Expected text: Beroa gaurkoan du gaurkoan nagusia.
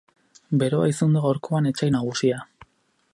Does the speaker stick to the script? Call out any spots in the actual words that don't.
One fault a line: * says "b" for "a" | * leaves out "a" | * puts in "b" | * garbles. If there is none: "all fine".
* says "izan" for "gaurkoan"
* puts in "etsai"